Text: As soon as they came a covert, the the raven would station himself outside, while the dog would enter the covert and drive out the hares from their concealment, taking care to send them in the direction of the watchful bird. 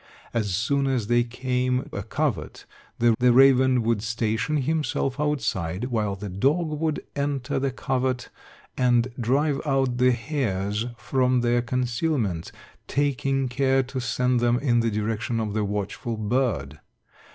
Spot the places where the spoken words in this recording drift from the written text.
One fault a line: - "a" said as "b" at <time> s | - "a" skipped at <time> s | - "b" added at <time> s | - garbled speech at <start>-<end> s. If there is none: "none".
none